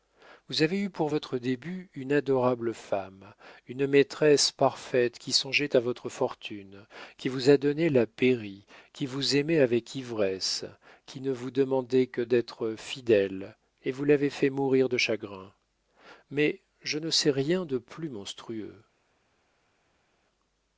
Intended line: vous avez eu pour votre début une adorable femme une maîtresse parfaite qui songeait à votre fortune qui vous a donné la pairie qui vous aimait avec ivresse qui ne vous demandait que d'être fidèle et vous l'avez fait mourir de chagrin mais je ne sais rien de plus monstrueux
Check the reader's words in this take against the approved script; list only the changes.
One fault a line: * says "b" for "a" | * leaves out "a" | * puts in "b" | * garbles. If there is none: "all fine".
all fine